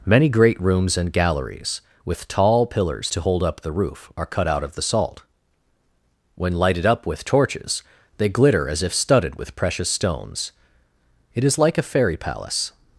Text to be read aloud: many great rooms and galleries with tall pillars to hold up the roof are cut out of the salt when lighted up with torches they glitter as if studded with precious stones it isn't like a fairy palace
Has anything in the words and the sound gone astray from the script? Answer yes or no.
yes